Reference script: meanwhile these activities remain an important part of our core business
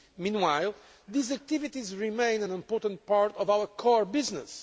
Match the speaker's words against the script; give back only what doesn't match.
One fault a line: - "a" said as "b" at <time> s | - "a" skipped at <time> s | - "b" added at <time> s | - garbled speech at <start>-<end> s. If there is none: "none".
none